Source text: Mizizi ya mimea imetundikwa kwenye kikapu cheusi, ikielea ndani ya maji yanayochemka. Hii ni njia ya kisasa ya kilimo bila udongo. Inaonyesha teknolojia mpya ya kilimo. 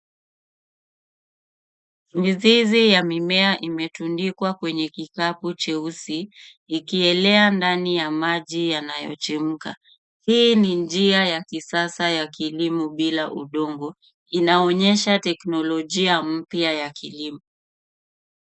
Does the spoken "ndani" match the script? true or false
true